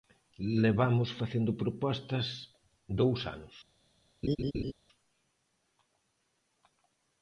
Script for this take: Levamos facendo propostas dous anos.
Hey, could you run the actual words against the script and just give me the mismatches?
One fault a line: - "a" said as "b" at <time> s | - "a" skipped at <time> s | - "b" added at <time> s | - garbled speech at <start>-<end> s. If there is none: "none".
none